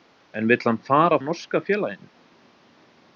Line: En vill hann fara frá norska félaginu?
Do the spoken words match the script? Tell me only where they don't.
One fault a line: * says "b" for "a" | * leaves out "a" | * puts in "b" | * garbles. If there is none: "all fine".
* leaves out "frá"